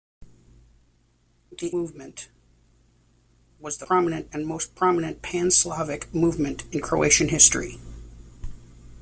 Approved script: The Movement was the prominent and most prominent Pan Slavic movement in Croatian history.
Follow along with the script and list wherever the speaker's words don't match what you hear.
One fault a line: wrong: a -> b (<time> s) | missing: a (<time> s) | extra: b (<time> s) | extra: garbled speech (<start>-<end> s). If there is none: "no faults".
no faults